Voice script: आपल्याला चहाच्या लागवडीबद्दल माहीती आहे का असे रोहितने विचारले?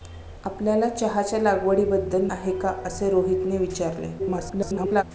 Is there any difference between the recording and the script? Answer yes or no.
yes